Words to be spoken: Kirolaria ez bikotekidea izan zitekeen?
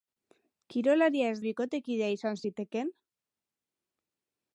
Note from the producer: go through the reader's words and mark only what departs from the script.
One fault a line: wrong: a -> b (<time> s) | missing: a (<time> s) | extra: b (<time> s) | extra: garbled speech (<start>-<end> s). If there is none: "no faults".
no faults